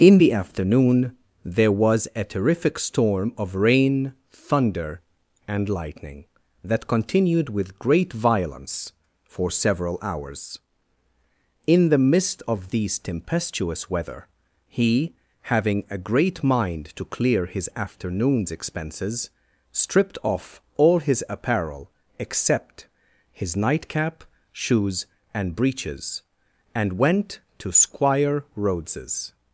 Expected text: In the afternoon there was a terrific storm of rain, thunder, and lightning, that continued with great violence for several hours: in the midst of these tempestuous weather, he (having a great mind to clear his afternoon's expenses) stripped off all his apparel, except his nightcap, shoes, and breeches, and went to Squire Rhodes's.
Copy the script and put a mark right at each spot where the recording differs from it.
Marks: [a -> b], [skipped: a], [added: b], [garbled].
In the afternoon there was a terrific storm of rain, thunder, and lightning, that continued with great violence for several hours: in the midst of these tempestuous weather, he (having a great mind to clear his afternoon's expenses) stripped off all his apparel, except his nightcap, shoes, and breeches, and went to Squire Rhodes's.